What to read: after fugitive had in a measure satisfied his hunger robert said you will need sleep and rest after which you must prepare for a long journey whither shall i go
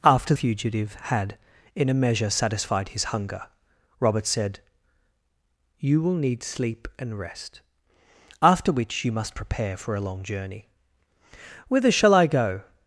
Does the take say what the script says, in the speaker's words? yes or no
yes